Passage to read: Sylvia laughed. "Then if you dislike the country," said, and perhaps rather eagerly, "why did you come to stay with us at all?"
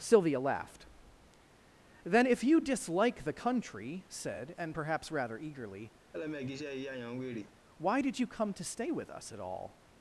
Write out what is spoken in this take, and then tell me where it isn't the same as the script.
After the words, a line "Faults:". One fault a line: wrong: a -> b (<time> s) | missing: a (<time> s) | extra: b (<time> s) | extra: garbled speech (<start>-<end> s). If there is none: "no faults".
Sylvia laughed. "Then if you dislike the country," said, and perhaps rather eagerly, "why did you come to stay with us at all?"
Faults:
no faults